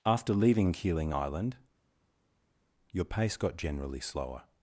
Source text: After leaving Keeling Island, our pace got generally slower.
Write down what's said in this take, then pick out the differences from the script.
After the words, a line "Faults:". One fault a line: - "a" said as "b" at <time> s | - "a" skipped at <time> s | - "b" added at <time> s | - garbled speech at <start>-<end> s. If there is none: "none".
After leaving Keeling Island, your pace got generally slower.
Faults:
- "our" said as "your" at 2.9 s